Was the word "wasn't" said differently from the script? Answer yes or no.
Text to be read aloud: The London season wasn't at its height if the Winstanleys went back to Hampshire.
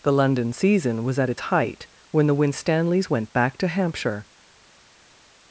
yes